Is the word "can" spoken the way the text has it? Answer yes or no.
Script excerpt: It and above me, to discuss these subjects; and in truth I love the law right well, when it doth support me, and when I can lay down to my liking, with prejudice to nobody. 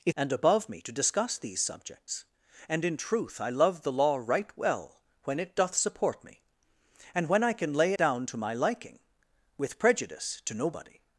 yes